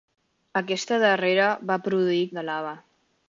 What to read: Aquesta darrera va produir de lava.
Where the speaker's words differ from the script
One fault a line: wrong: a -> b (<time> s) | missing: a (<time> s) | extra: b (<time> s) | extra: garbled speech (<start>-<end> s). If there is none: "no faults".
no faults